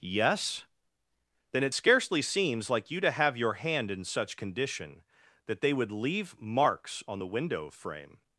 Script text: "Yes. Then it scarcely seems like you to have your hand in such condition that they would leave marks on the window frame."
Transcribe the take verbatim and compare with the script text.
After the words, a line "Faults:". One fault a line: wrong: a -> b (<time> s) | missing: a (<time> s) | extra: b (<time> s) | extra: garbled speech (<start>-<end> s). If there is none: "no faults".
"Yes. Then it scarcely seems like you to have your hand in such condition that they would leave marks on the window frame."
Faults:
no faults